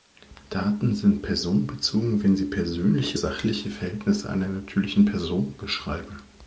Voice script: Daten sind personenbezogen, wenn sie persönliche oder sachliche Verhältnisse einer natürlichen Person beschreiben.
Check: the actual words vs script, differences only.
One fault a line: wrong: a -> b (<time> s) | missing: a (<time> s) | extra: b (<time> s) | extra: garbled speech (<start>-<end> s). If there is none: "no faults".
missing: oder (3.2 s)